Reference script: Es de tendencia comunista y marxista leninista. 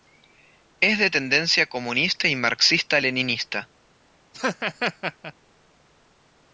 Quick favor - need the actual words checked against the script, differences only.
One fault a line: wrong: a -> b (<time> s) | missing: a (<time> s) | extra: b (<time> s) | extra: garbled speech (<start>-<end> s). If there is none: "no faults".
no faults